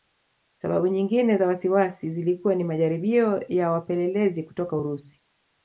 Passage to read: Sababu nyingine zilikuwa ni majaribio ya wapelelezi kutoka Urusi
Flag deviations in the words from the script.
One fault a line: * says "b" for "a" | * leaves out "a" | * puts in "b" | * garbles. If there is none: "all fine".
* puts in "za wasiwasi"